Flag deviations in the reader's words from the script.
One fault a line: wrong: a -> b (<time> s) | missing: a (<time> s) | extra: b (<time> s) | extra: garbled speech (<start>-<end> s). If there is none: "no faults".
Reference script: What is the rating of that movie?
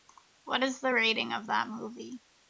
no faults